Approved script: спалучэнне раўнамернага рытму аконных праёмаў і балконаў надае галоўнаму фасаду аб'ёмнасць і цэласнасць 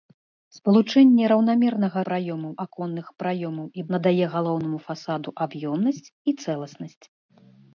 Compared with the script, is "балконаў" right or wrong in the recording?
wrong